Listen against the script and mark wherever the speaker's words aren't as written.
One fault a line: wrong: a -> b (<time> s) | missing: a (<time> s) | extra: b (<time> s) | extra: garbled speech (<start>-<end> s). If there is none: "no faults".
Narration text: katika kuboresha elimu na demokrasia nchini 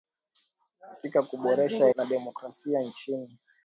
missing: elimu (1.9 s)